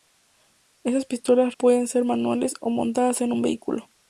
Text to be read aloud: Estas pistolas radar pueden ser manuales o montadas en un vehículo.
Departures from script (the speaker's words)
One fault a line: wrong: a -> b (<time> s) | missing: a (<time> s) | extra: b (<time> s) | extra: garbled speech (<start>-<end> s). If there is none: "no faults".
missing: radar (1.5 s)